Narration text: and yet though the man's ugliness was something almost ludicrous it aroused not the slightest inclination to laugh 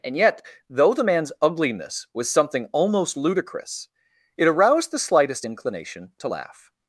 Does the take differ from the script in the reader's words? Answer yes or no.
yes